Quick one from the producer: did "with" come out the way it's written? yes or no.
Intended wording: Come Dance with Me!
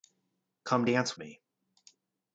no